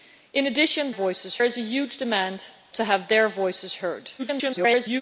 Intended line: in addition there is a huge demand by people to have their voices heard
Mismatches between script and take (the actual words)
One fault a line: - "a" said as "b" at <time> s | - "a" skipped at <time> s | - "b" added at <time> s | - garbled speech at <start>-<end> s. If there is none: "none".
- "there" said as "voices" at 0.9 s
- "by people" skipped at 2.4 s
- garbled speech at 4.2-5.0 s